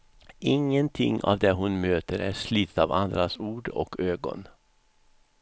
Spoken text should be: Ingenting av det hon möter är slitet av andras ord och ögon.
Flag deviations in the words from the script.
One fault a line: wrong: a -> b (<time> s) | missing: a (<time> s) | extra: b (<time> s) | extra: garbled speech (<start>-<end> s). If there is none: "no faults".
no faults